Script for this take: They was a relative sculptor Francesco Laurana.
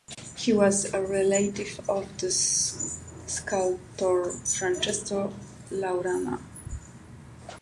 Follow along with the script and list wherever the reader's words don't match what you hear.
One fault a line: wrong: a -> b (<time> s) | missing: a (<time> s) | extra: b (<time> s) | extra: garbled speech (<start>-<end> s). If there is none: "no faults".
wrong: They -> He (0.3 s)
extra: of the (1.9 s)